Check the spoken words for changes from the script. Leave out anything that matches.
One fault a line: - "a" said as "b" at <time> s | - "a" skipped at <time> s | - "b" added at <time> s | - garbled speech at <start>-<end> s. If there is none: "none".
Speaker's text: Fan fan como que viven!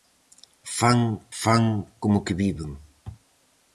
none